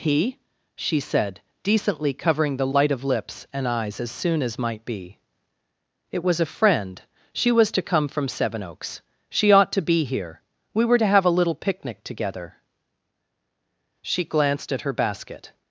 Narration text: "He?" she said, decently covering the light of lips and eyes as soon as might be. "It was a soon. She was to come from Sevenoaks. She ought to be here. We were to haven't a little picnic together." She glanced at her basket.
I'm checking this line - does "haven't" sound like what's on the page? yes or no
no